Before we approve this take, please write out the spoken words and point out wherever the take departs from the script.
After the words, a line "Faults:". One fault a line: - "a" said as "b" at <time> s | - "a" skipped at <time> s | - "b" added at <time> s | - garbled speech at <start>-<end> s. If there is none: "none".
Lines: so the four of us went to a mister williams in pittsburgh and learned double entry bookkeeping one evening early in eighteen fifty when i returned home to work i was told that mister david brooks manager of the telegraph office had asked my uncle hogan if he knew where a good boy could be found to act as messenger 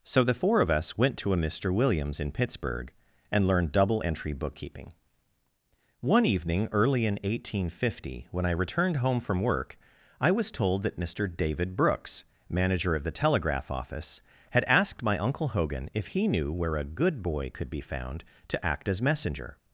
so the four of us went to a mister williams in pittsburgh and learned double entry bookkeeping one evening early in eighteen fifty when i returned home from work i was told that mister david brooks manager of the telegraph office had asked my uncle hogan if he knew where a good boy could be found to act as messenger
Faults:
- "to" said as "from" at 9.2 s